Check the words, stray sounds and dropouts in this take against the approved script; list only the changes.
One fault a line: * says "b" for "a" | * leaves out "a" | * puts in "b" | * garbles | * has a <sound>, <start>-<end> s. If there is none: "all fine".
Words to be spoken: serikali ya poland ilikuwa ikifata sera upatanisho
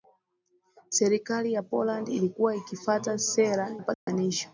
* has a dropout, 3.9-4.1 s